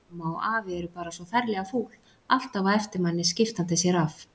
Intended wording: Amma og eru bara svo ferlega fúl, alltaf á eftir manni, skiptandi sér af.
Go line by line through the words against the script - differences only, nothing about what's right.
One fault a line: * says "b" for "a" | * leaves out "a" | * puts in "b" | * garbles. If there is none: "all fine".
* puts in "afi"